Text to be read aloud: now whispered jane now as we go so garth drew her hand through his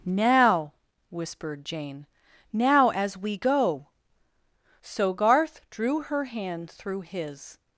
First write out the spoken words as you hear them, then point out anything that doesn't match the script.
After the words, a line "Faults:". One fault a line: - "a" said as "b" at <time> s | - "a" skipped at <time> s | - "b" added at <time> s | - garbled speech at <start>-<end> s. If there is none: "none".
now whispered jane now as we go so garth drew her hand through his
Faults:
none